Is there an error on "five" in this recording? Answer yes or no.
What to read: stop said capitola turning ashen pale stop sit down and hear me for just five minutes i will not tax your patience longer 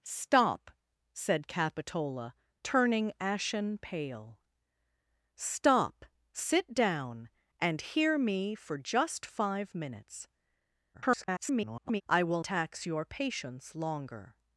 no